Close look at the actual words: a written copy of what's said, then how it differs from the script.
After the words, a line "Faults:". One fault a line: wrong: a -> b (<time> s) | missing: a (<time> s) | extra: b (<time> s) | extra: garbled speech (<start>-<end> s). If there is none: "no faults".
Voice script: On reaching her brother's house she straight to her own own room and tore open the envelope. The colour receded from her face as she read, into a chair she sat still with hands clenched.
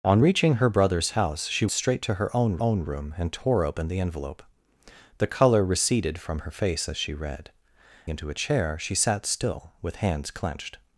On reaching her brother's house she straight to her own own room and tore open the envelope. The colour receded from her face as she read, into a chair she sat still with hands clenched.
Faults:
no faults